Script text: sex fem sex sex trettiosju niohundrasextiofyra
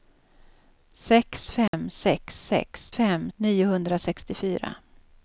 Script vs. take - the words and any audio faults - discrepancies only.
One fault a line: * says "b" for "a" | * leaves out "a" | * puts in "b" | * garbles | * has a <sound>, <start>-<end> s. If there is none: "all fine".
* has a dropout, 1.7-1.7 s
* says "fem" for "trettiosju"